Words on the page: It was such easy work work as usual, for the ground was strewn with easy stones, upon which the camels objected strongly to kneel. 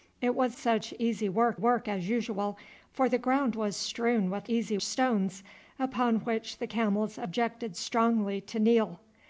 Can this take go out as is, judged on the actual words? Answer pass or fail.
pass